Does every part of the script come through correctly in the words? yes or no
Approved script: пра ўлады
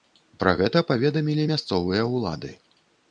no